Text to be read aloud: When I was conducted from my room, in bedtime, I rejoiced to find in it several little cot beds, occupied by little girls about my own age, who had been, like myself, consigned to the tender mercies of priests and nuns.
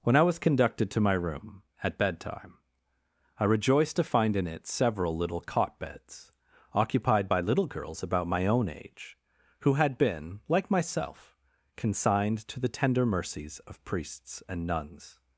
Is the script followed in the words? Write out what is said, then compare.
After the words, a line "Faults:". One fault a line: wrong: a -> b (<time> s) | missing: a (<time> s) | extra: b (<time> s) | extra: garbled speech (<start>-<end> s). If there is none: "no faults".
When I was conducted to my room, at bedtime, I rejoiced to find in it several little cot beds, occupied by little girls about my own age, who had been, like myself, consigned to the tender mercies of priests and nuns.
Faults:
wrong: from -> to (0.9 s)
wrong: in -> at (1.8 s)